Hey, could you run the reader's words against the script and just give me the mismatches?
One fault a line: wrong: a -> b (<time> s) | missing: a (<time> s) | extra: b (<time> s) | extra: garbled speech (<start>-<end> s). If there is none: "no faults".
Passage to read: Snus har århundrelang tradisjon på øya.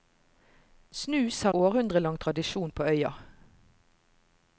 no faults